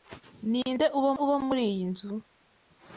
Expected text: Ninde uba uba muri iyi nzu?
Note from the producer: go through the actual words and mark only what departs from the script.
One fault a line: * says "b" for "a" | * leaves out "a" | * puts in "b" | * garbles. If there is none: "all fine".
all fine